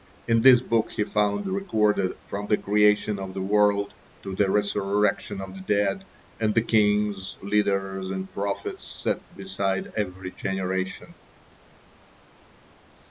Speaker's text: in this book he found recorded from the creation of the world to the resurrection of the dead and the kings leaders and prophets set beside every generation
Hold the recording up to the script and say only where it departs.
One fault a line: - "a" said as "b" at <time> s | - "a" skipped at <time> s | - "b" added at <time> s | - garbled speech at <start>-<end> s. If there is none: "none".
none